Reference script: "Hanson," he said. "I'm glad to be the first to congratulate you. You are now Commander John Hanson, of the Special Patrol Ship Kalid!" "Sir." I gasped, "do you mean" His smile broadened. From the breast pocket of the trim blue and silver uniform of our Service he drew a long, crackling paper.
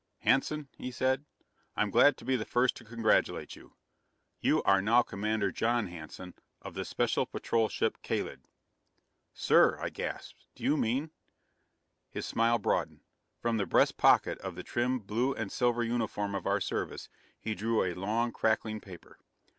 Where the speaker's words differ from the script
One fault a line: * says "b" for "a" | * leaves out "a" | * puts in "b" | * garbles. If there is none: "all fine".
all fine